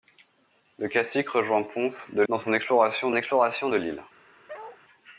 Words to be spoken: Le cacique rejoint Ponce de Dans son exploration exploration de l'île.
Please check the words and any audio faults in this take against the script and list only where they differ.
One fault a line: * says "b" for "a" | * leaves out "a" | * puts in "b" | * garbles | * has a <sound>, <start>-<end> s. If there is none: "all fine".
* has a bark, 4.5-4.8 s